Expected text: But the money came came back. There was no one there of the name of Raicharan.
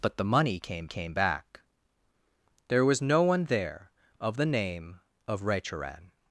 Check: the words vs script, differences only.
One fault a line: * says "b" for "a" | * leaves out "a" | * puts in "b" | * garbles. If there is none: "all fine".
all fine